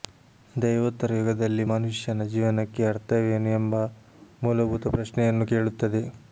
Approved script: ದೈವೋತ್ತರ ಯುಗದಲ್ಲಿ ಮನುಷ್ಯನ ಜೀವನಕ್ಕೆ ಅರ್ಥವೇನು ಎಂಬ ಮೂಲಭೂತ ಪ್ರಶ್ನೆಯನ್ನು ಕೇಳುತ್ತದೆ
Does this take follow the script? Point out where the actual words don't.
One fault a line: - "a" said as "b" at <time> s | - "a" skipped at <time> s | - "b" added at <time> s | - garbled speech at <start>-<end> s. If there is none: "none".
none